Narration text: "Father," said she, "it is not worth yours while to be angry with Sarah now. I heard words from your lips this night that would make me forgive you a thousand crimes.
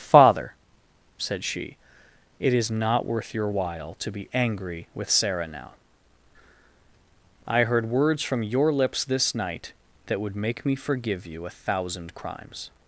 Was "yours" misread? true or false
true